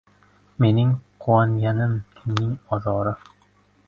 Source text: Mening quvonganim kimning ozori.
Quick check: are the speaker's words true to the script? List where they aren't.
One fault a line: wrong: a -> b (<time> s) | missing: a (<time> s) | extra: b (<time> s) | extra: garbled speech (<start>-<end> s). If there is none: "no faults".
no faults